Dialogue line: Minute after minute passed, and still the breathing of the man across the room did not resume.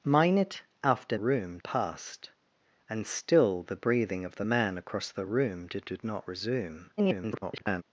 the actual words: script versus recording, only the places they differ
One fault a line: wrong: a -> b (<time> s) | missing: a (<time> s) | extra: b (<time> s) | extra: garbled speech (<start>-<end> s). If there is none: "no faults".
wrong: minute -> room (1.2 s)
extra: did (5.8 s)
extra: garbled speech (7.0-7.8 s)